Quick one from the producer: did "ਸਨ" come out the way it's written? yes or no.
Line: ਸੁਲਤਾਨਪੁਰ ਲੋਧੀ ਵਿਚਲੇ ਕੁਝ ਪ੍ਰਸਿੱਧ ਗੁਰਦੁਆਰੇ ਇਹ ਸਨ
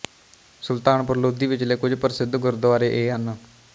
no